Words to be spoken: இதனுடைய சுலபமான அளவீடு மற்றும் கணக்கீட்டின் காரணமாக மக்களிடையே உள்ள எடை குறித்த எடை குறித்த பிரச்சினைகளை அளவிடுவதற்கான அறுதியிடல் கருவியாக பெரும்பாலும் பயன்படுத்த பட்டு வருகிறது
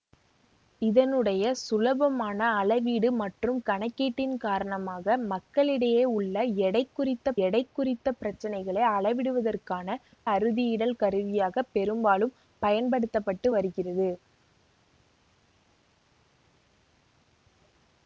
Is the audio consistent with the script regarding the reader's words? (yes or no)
yes